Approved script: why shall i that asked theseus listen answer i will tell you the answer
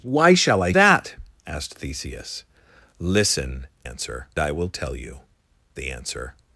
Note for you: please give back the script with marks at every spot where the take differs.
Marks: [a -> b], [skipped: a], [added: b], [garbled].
why shall i that asked theseus listen answer i will tell you the answer